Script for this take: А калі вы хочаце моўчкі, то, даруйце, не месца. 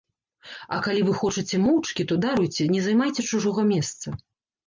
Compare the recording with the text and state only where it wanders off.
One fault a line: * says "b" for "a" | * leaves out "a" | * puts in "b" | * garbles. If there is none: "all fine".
* puts in "займайце чужога"